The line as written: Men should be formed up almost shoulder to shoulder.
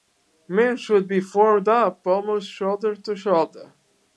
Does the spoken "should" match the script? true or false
true